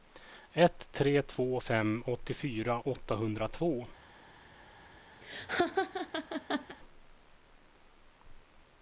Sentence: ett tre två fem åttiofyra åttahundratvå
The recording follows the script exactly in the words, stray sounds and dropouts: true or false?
false